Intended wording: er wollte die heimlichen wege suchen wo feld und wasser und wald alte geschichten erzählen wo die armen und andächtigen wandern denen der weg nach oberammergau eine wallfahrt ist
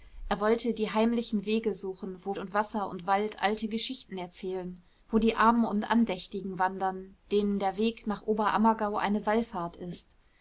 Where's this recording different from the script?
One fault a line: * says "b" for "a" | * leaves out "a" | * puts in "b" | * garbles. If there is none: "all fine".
* leaves out "feld"